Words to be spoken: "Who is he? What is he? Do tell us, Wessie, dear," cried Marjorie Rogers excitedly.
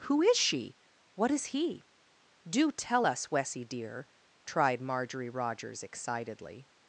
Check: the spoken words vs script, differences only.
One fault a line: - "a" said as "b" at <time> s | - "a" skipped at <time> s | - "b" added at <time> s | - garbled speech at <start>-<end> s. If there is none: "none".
- "he" said as "she" at 0.3 s
- "cried" said as "tried" at 4.5 s